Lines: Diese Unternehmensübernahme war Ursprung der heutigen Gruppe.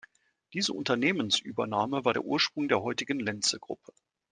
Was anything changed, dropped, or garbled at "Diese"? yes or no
no